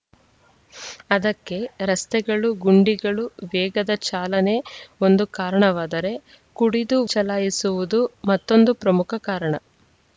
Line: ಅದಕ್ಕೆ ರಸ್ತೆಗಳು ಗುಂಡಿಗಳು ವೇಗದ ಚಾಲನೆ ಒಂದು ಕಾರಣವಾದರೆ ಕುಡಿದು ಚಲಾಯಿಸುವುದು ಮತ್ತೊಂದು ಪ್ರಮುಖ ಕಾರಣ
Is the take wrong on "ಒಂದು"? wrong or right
right